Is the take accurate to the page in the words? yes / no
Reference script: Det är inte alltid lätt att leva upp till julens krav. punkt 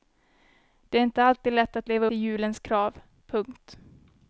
no